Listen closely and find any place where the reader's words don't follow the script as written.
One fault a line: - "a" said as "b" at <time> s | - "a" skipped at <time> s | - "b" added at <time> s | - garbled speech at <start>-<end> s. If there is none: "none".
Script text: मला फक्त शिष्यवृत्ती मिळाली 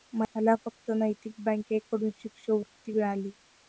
- "नैतिक बँकेकडून" added at 0.9 s